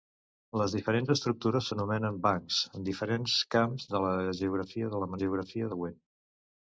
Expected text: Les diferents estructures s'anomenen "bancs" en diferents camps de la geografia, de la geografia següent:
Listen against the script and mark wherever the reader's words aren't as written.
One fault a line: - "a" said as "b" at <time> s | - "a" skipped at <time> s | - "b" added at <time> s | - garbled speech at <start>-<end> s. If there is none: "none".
none